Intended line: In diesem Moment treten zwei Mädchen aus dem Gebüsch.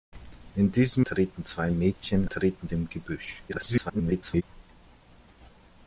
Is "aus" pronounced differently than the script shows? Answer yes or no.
yes